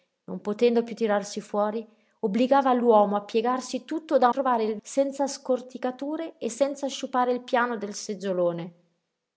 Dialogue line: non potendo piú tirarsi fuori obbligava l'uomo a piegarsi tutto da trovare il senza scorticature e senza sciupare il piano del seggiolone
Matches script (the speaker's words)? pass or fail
pass